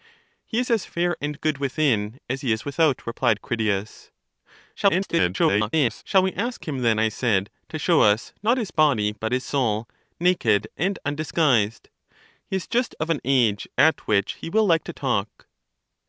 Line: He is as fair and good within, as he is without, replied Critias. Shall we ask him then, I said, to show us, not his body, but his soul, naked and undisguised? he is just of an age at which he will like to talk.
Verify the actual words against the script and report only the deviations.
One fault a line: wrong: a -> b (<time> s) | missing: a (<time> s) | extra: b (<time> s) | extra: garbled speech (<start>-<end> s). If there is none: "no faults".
extra: garbled speech (4.8-6.0 s)